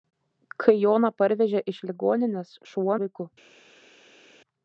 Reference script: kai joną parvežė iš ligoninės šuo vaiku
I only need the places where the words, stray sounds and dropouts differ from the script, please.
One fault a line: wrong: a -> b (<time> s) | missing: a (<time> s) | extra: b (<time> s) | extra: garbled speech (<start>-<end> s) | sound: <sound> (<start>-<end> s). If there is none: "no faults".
no faults